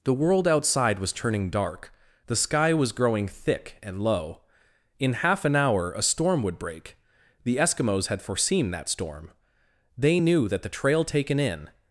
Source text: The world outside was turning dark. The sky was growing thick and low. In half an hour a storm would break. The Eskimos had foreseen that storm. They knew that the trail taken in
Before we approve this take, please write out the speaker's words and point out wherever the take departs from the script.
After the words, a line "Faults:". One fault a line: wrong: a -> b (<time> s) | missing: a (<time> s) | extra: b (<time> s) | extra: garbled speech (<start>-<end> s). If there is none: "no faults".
The world outside was turning dark. The sky was growing thick and low. In half an hour a storm would break. The Eskimos had foreseen that storm. They knew that the trail taken in
Faults:
no faults